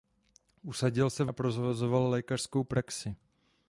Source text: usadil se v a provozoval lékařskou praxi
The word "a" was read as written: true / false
true